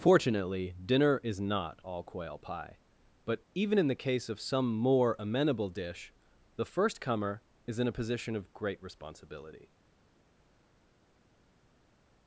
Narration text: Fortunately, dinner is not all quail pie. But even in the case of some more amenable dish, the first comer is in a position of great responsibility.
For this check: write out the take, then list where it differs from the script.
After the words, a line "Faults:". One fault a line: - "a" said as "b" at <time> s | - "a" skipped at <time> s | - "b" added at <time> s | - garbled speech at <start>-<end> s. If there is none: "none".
Fortunately, dinner is not all quail pie. But even in the case of some more amenable dish, the first comer is in a position of great responsibility.
Faults:
none